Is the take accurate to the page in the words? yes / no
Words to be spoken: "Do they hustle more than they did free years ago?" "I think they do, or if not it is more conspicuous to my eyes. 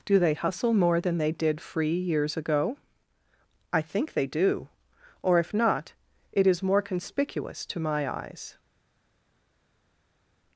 yes